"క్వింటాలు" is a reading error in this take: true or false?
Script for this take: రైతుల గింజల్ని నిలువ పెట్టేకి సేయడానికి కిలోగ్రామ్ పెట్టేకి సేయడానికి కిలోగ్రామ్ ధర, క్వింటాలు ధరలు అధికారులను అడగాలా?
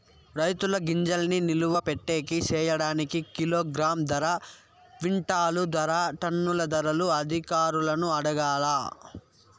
true